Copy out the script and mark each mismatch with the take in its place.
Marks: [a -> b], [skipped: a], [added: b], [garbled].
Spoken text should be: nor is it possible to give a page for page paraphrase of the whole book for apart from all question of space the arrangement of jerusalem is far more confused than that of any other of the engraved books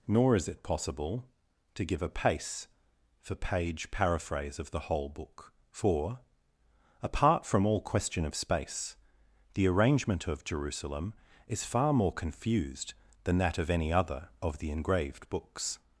nor is it possible to give a [page -> pace] for page paraphrase of the whole book for apart from all question of space the arrangement of jerusalem is far more confused than that of any other of the engraved books